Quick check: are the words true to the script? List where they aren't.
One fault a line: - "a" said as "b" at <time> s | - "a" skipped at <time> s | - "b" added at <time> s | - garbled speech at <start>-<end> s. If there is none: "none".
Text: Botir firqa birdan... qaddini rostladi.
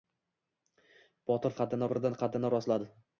- "firqa" said as "qaddini" at 1.6 s